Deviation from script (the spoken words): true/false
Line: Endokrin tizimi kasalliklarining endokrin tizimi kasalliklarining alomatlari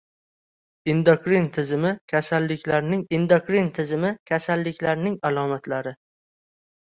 false